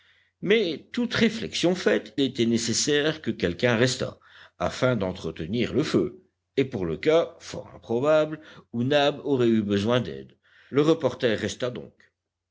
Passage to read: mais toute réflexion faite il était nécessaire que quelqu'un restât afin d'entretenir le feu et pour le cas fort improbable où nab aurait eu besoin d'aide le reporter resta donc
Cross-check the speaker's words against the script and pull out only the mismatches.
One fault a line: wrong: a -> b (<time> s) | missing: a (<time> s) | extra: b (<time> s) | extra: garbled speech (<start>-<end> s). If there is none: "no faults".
missing: il (2.2 s)